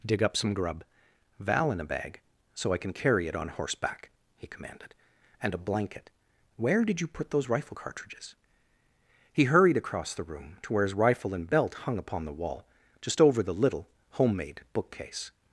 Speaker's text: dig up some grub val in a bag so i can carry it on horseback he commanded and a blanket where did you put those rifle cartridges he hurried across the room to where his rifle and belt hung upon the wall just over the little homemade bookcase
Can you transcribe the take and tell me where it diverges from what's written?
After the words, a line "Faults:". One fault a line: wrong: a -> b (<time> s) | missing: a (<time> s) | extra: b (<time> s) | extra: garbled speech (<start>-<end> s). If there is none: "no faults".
dig up some grub val in a bag so i can carry it on horseback he commanded and a blanket where did you put those rifle cartridges he hurried across the room to where his rifle and belt hung upon the wall just over the little homemade bookcase
Faults:
no faults